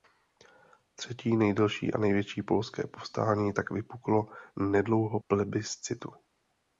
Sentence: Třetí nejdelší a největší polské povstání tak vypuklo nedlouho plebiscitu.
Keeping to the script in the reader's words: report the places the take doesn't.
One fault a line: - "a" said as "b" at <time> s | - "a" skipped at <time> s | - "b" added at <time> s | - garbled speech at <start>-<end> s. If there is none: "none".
none